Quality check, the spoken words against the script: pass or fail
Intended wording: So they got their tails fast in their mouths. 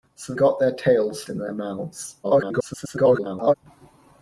fail